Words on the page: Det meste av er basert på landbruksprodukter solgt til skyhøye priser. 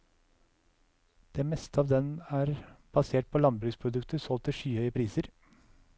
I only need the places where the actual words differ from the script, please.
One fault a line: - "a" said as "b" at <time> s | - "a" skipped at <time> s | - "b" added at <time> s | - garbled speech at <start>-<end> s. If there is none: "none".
- "den" added at 1.9 s